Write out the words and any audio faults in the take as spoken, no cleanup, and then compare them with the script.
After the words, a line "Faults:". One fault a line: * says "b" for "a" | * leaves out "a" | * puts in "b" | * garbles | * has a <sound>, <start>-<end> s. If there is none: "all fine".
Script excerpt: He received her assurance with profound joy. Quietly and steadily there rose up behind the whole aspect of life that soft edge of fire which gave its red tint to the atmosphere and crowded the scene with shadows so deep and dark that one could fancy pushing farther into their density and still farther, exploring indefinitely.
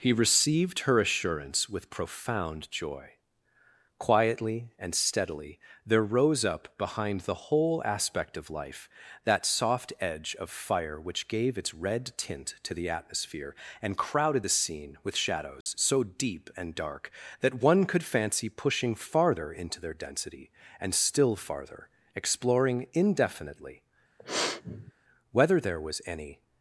He received her assurance with profound joy. Quietly and steadily there rose up behind the whole aspect of life that soft edge of fire which gave its red tint to the atmosphere and crowded the scene with shadows so deep and dark that one could fancy pushing farther into their density and still farther, exploring indefinitely. Whether there was any
Faults:
* has a dropout, 15.6-15.7 s
* has a sniff, 24.2-24.9 s
* puts in "Whether there was any"